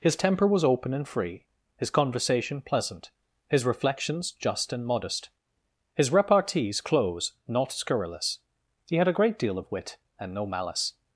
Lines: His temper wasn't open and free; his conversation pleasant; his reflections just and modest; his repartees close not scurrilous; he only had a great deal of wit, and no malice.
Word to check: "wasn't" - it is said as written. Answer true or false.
false